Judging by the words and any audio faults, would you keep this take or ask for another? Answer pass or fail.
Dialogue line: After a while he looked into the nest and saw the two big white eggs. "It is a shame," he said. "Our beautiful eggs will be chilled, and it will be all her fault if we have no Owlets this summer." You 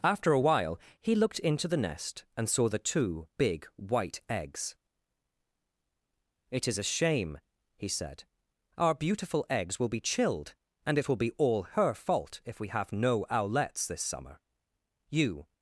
pass